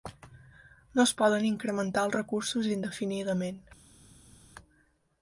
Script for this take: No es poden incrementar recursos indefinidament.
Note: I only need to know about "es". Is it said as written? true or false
true